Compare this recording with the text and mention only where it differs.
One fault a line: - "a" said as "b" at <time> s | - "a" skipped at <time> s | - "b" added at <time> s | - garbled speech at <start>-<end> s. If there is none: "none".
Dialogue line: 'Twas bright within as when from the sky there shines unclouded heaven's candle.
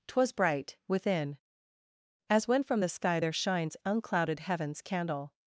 none